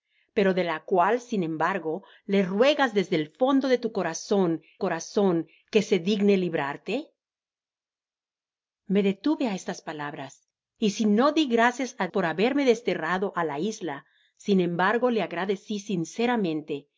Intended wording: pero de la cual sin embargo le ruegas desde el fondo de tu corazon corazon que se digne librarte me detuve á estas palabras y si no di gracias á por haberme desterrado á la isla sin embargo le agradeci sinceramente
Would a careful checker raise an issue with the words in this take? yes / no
no